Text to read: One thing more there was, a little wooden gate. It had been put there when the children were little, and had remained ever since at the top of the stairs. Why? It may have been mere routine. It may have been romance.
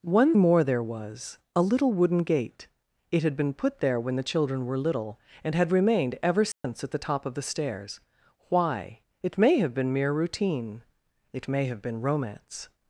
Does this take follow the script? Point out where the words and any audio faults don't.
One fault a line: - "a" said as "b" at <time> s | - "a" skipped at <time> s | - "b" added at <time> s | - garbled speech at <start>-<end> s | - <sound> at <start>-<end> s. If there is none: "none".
- "thing" skipped at 0.3 s
- dropout at 6.5-6.6 s